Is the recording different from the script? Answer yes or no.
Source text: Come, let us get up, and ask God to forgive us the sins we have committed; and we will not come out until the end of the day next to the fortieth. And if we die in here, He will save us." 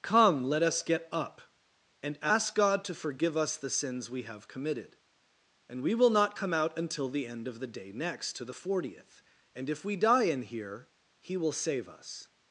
no